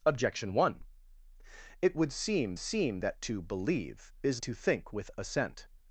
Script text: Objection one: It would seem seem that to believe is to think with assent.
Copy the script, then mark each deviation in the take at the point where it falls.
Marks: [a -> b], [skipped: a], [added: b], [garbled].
Objection one: It would seem seem that to believe is to think with assent.